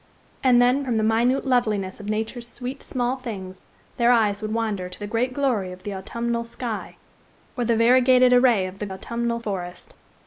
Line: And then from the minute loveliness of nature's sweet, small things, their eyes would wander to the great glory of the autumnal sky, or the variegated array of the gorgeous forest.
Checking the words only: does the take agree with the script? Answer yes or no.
no